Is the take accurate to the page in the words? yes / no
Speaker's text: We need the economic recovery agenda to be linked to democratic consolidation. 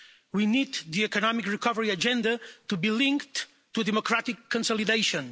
yes